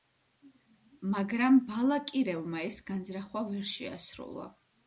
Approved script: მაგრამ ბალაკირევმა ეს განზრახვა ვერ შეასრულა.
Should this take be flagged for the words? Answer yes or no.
no